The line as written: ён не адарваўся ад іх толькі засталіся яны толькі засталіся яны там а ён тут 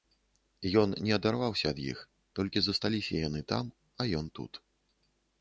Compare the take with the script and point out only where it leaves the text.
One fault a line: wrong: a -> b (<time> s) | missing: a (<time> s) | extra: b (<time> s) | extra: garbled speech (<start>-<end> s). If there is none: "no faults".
missing: толькі засталіся яны (3.4 s)